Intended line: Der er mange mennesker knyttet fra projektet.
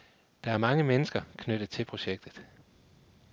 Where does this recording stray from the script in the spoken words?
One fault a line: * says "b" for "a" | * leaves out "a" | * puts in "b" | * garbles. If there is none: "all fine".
* says "til" for "fra"